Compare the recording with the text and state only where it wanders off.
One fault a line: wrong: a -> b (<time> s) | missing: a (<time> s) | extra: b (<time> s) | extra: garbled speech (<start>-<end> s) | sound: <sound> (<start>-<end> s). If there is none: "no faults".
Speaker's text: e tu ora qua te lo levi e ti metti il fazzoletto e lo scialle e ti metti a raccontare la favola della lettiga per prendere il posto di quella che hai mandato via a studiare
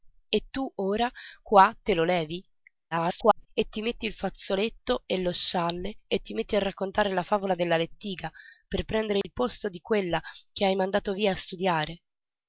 extra: garbled speech (2.9-3.5 s)
sound: dropout (9.2-9.2 s)